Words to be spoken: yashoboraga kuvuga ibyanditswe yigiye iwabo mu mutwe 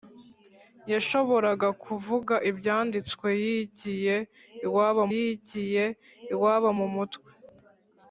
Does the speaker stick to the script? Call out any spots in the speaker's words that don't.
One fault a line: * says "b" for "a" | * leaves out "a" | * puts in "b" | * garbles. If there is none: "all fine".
* puts in "yigiye iwabo"